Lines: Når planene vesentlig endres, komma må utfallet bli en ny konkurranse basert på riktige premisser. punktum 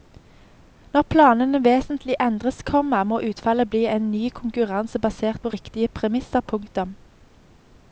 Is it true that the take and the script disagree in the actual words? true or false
false